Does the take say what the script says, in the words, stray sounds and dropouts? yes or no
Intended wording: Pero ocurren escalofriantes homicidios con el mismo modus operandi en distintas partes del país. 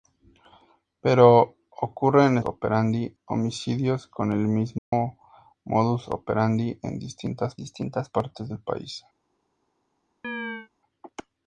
no